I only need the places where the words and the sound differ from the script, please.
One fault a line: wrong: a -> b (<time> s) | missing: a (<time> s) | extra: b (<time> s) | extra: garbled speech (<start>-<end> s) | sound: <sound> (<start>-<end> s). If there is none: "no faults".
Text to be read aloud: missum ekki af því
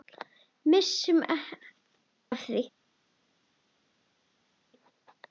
missing: ekki (1.2 s)